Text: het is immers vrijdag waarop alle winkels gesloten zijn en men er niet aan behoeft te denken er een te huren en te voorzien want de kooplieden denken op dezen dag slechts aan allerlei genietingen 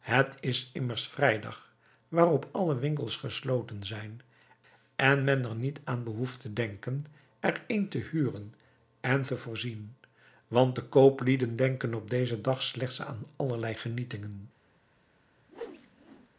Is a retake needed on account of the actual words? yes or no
no